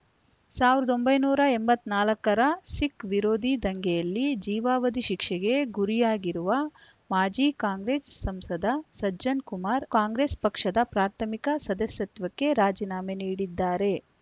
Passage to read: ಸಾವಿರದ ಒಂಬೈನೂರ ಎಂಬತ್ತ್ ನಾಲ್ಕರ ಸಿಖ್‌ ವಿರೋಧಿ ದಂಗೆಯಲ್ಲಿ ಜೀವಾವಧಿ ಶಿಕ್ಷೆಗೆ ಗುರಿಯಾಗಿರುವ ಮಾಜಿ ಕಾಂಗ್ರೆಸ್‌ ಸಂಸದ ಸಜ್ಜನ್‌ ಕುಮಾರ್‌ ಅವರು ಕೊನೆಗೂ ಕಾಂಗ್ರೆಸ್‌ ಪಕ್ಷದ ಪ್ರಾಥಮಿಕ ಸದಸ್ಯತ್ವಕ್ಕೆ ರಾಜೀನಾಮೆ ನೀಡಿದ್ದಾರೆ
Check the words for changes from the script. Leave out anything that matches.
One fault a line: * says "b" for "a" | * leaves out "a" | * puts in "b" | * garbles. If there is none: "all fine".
* leaves out "ಅವರು ಕೊನೆಗೂ"